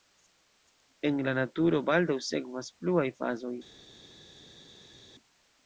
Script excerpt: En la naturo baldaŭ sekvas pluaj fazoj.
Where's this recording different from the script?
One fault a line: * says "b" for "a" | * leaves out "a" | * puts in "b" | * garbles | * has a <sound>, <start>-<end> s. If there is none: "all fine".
all fine